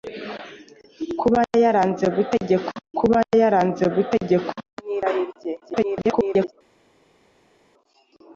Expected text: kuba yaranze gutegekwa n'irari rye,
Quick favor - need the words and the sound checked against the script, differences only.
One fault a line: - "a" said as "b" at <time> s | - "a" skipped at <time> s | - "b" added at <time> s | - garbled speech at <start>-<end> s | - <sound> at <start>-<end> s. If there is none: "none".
- "kuba yaranze gutegekwa" added at 3.0 s
- garbled speech at 5.6-6.5 s